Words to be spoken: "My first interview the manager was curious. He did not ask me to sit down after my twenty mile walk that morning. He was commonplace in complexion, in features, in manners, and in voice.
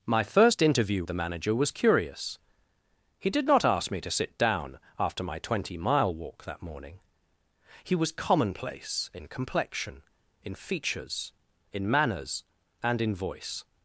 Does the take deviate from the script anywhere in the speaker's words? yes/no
no